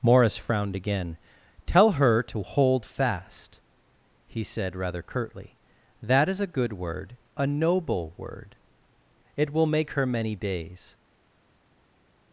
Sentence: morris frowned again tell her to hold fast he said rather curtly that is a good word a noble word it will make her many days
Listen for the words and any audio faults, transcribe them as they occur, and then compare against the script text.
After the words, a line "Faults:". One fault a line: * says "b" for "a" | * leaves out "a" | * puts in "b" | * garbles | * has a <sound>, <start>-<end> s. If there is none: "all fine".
morris frowned again tell her to hold fast he said rather curtly that is a good word a noble word it will make her many days
Faults:
all fine